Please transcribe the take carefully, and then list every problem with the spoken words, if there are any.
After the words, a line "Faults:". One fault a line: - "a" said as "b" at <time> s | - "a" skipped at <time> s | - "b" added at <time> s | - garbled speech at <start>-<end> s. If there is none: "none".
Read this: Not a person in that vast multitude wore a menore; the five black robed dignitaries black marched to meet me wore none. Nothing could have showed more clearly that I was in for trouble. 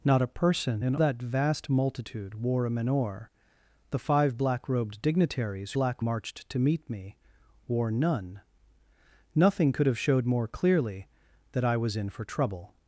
Not a person in that vast multitude wore a menore; the five black robed dignitaries black marched to meet me wore none. Nothing could have showed more clearly that I was in for trouble.
Faults:
none